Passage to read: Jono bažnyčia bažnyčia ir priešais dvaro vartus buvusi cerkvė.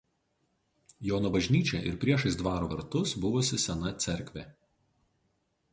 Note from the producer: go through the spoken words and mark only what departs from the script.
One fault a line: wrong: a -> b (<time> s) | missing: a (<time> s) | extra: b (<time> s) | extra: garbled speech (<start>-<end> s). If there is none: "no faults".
missing: bažnyčia (1.8 s)
extra: sena (3.7 s)